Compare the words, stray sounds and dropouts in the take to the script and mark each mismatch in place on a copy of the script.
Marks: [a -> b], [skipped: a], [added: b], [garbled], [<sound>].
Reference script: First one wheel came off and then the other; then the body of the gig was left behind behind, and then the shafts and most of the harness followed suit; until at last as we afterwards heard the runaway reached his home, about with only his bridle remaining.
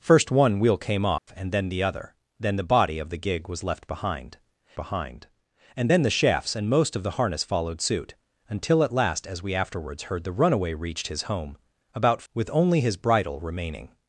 First one wheel came off [dropout] and then the other; then the body of the gig was left behind behind, and then the shafts and most of the harness followed suit; until at last as we afterwards heard the runaway reached his home, about with only his bridle remaining.